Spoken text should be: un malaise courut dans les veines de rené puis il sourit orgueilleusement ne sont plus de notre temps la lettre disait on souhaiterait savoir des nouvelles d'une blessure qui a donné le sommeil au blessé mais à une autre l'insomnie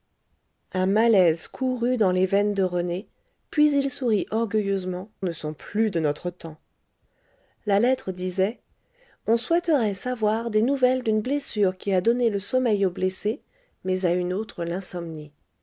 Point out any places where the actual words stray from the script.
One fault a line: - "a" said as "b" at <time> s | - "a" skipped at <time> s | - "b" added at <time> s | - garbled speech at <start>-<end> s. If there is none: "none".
none